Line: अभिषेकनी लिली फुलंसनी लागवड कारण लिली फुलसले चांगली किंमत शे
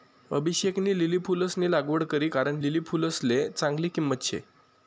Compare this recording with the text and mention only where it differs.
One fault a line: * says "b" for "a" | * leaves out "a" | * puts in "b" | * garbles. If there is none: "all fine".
* puts in "करी"